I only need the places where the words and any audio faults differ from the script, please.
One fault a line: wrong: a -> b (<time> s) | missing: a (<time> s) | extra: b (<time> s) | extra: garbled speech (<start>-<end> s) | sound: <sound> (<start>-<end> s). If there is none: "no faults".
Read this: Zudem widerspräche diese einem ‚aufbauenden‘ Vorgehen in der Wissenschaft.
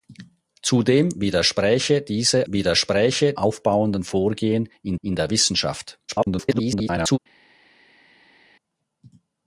wrong: einem -> widerspräche (2.5 s)
extra: in (5.0 s)
extra: garbled speech (6.1-7.2 s)